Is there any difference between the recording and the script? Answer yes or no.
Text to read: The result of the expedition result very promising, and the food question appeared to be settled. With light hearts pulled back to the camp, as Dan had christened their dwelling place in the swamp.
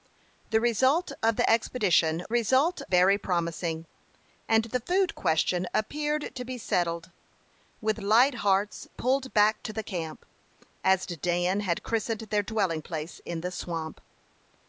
no